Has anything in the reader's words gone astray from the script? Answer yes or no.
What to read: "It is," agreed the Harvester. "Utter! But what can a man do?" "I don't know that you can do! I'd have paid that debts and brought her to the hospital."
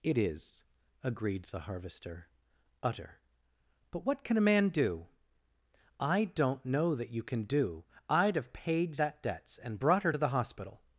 no